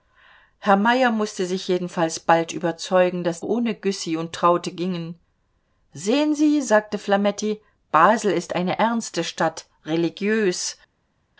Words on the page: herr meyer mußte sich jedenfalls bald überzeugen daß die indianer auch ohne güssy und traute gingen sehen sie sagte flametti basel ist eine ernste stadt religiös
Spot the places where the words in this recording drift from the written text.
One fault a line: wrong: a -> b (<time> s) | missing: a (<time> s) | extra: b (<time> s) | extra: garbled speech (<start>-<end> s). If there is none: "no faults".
missing: die indianer auch (3.4 s)